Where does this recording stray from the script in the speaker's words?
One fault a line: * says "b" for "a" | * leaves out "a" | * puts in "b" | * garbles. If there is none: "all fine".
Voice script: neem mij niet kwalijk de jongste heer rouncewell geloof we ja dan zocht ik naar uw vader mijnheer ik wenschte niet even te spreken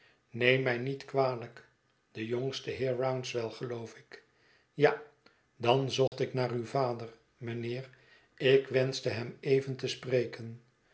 * says "ik" for "we"
* says "hem" for "niet"